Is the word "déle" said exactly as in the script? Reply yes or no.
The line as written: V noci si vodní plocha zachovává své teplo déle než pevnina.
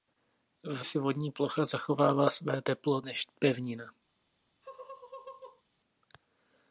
no